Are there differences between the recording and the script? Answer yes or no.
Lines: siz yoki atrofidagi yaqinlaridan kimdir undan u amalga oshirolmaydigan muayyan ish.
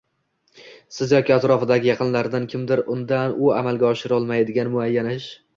no